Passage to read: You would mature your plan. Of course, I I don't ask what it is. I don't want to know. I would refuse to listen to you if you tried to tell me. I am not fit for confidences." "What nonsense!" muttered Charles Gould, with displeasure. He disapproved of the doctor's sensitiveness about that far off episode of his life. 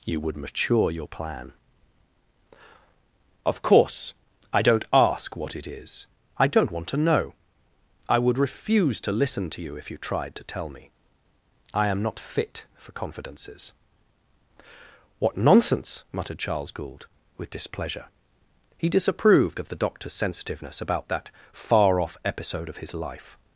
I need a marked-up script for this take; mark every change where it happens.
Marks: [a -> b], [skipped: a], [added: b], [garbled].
You would mature your plan. Of course, I [skipped: I] don't ask what it is. I don't want to know. I would refuse to listen to you if you tried to tell me. I am not fit for confidences." "What nonsense!" muttered Charles Gould, with displeasure. He disapproved of the doctor's sensitiveness about that far off episode of his life.